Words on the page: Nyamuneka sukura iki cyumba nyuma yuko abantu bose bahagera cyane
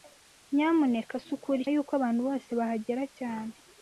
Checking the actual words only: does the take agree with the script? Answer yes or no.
no